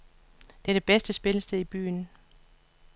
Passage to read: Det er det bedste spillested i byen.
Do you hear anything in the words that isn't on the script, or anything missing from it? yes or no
no